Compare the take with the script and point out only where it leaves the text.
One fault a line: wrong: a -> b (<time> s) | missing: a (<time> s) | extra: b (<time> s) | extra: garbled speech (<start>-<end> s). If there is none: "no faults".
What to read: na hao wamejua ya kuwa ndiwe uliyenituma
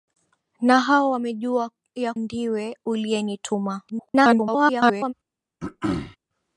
missing: kuwa (2.1 s)
extra: garbled speech (3.9-5.1 s)